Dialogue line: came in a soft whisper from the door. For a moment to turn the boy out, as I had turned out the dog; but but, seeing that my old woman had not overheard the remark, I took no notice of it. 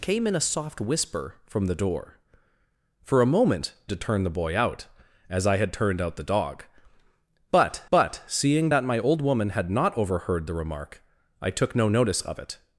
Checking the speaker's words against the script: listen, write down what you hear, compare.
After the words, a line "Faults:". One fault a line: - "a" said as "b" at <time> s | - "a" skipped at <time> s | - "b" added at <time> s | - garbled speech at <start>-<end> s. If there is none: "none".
came in a soft whisper from the door. For a moment to turn the boy out, as I had turned out the dog; but but, seeing that my old woman had not overheard the remark, I took no notice of it.
Faults:
none